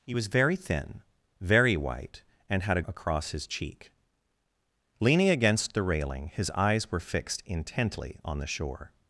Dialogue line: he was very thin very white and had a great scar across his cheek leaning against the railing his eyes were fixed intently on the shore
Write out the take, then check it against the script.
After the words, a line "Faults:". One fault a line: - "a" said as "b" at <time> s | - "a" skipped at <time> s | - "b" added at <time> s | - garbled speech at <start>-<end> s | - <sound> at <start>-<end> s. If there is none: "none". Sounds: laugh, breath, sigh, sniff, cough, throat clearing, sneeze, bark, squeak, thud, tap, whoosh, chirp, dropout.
he was very thin very white and had a across his cheek leaning against the railing his eyes were fixed intently on the shore
Faults:
- "great scar" skipped at 2.8 s